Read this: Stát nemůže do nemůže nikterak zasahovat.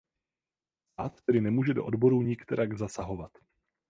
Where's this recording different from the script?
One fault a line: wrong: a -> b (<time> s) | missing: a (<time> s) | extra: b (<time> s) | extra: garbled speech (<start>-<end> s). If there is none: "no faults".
extra: tedy (1.2 s)
wrong: nemůže -> odborů (1.8 s)